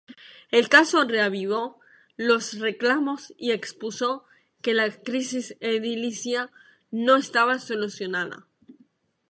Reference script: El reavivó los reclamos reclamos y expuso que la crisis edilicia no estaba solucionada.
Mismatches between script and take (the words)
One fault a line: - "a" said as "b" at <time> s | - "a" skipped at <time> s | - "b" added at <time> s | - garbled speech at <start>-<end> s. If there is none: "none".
- "caso" added at 0.7 s
- "reclamos" skipped at 3.4 s